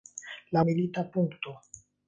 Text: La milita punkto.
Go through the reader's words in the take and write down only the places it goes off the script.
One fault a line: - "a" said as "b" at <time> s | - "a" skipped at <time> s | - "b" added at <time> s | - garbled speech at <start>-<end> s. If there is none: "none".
none